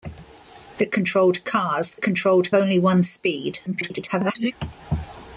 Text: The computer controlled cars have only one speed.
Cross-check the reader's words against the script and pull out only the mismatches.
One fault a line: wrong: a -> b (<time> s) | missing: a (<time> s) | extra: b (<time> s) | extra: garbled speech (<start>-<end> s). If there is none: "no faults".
missing: computer (0.9 s)
wrong: have -> controlled (2.0 s)
extra: garbled speech (3.7-4.5 s)